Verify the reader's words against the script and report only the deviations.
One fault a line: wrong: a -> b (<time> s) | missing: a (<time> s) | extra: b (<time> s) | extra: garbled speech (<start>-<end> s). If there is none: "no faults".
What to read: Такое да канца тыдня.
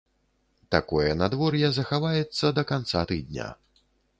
extra: надвор'е захаваецца (1.2 s)